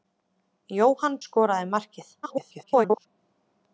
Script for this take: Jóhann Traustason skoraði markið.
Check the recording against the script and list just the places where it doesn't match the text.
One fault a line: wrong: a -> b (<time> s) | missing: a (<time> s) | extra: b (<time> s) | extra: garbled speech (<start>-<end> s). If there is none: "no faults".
missing: Traustason (1.2 s)
extra: garbled speech (2.2-3.1 s)